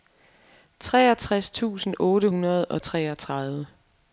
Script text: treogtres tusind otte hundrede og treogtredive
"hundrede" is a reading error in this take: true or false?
false